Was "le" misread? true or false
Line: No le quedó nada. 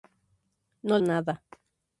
true